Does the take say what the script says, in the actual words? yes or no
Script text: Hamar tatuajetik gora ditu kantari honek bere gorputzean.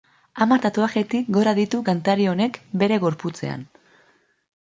yes